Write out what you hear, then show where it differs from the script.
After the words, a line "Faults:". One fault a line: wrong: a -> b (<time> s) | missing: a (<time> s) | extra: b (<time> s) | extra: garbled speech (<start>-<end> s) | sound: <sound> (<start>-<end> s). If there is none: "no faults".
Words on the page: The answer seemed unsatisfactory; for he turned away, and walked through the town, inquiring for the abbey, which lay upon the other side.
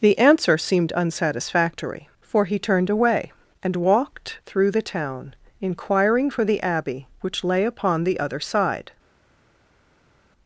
The answer seemed unsatisfactory; for he turned away, and walked through the town, inquiring for the abbey, which lay upon the other side.
Faults:
no faults